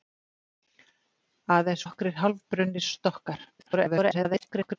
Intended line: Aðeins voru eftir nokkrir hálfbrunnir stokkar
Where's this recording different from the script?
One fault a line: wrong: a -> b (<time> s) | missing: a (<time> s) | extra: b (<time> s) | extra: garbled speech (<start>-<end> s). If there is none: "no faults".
missing: voru eftir (1.9 s)
extra: garbled speech (3.6-4.8 s)